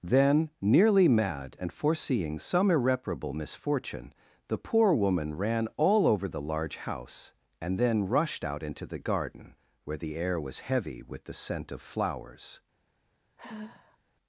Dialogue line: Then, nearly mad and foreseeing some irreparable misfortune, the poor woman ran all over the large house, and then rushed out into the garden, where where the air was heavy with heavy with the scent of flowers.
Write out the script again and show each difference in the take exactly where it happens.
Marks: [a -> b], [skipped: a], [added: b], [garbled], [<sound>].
Then, nearly mad and foreseeing some irreparable misfortune, the poor woman ran all over the large house, and then rushed out into the garden, where [skipped: where] the air was heavy with [skipped: heavy with] the scent of flowers. [sigh]